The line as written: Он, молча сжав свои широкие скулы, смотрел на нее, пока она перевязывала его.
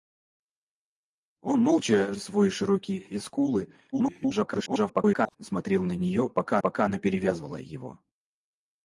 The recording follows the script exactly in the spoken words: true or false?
false